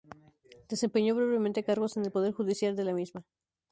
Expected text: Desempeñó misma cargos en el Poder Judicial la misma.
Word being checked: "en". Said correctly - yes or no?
yes